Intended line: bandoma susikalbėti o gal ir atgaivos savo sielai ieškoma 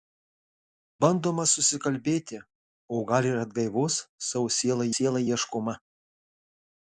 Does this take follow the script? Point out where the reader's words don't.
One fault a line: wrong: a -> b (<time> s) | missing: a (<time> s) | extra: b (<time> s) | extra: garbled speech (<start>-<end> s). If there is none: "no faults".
extra: sielai (5.0 s)